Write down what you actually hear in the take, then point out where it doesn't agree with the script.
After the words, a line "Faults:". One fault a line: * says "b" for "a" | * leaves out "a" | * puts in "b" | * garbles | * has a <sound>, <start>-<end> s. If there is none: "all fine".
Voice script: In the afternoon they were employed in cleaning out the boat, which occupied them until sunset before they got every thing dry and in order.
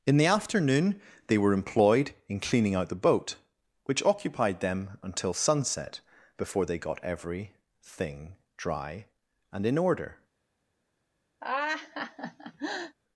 In the afternoon they were employed in cleaning out the boat, which occupied them until sunset before they got every thing dry and in order.
Faults:
* has a laugh, 11.4-13.0 s